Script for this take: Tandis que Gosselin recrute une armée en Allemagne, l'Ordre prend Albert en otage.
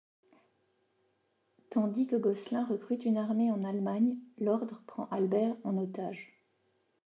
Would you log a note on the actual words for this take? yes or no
no